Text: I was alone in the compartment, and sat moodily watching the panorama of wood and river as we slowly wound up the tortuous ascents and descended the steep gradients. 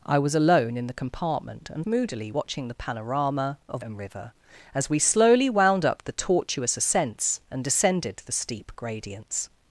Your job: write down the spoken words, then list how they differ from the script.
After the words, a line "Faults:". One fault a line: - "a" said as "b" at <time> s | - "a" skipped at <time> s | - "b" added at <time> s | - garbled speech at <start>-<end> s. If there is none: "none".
I was alone in the compartment, and moodily watching the panorama of and river as we slowly wound up the tortuous ascents and descended the steep gradients.
Faults:
- "sat" skipped at 1.9 s
- "wood" skipped at 3.8 s